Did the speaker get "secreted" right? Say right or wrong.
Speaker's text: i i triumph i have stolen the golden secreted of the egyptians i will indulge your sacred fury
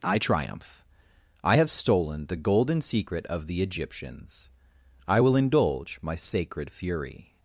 wrong